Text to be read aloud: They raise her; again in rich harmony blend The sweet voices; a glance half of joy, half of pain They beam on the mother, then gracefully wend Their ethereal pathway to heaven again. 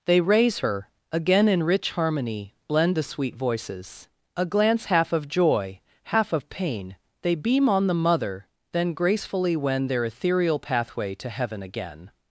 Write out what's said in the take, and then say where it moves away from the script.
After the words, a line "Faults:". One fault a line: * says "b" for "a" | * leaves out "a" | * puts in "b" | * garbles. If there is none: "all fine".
They raise her; again in rich harmony blend The sweet voices; a glance half of joy, half of pain They beam on the mother, then gracefully wend Their ethereal pathway to heaven again.
Faults:
all fine